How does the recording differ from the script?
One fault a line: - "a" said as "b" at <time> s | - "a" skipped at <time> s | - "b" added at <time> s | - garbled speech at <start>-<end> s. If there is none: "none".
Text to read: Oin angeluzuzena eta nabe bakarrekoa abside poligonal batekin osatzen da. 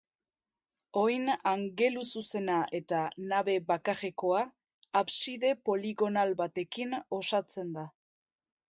none